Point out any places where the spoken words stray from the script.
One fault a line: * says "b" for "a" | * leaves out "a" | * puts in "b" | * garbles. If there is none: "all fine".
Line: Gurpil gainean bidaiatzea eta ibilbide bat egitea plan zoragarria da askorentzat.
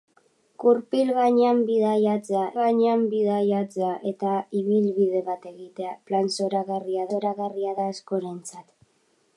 * puts in "gainean bidaiatzea"
* puts in "zoragarria"